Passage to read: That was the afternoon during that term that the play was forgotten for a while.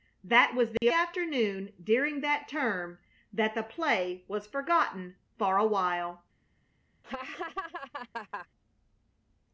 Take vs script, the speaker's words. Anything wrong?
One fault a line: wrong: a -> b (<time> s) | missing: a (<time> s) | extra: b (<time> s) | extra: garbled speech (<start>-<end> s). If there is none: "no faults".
no faults